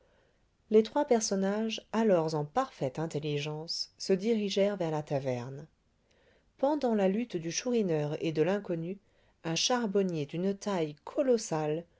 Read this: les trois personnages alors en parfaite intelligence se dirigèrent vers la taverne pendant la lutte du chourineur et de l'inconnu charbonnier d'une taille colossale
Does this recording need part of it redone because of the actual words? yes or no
yes